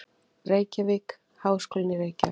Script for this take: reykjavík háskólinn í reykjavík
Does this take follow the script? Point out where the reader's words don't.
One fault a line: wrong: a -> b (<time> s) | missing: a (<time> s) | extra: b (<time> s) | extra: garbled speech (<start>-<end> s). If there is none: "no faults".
no faults